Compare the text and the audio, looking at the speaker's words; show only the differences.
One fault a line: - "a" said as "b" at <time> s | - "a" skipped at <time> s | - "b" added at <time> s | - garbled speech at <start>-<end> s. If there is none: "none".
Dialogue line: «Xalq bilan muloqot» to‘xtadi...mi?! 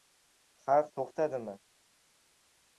- "bilan muloqot" skipped at 0.9 s